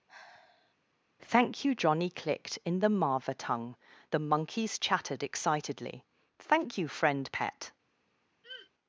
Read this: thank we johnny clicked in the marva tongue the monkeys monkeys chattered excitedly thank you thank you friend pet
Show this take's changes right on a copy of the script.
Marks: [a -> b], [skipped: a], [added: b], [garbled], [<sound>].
[sigh] thank [we -> you] johnny clicked in the marva tongue the monkeys [skipped: monkeys] chattered excitedly thank you [skipped: thank you] friend pet [throat clearing]